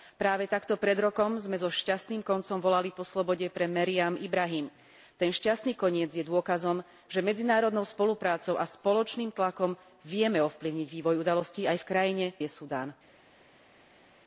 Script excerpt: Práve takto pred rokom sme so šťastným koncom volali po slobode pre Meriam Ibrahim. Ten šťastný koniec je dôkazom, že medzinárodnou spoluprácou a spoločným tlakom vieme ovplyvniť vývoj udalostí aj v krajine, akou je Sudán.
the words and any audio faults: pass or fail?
fail